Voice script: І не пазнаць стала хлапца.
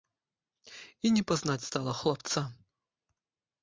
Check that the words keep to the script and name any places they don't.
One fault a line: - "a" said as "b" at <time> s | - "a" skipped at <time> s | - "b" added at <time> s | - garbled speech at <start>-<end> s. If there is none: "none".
none